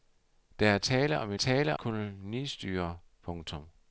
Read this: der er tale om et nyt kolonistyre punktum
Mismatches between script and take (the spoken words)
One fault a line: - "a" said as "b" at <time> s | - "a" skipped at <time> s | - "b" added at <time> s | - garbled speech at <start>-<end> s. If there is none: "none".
- "nyt" said as "tale" at 1.3 s